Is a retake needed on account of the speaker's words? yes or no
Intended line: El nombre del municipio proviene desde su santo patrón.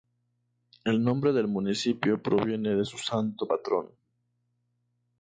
yes